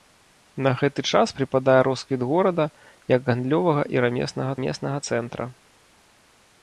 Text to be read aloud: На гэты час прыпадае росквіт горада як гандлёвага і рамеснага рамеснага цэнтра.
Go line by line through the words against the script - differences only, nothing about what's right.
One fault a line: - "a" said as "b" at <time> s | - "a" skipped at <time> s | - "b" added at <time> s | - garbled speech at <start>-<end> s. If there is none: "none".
none